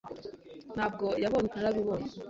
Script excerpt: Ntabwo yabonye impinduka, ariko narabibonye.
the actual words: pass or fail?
fail